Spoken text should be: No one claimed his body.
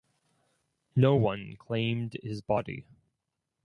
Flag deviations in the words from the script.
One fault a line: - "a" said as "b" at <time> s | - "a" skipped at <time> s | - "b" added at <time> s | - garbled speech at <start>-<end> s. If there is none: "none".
none